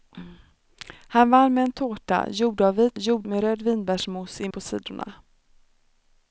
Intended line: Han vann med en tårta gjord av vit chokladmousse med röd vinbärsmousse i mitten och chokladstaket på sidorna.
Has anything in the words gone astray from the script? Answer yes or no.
yes